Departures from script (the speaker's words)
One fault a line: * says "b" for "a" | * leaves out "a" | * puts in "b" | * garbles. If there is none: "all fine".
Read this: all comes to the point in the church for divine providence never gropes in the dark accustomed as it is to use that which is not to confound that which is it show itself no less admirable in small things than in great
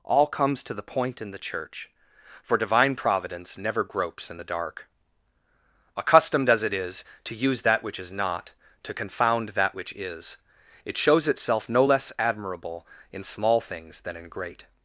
* says "shows" for "show"